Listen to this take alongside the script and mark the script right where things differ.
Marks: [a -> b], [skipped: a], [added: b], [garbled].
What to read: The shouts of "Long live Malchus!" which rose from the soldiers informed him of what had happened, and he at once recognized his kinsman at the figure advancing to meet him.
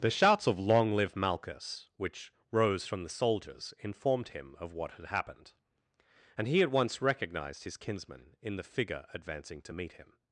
The shouts of "Long live Malchus!" which rose from the soldiers informed him of what had happened, and he at once recognized his kinsman [at -> in] the figure advancing to meet him.